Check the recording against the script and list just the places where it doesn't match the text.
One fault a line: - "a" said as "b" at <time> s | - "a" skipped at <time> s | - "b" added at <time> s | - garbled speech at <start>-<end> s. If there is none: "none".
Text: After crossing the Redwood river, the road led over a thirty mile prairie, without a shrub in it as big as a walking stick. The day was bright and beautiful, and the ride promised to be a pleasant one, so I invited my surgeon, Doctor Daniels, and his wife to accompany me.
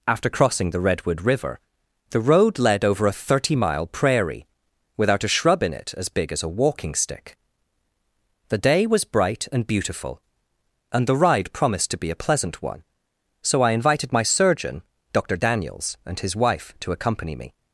none